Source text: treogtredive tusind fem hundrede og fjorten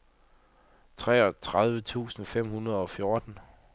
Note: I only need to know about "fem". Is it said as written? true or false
true